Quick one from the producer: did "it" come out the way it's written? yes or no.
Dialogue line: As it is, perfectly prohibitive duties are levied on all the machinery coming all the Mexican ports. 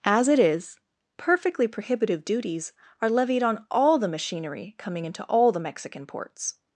yes